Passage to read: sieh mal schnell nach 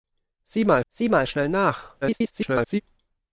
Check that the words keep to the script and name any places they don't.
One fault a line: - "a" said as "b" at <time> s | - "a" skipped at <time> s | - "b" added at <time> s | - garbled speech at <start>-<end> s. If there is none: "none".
- "sieh mal" added at 0.9 s
- garbled speech at 2.0-2.8 s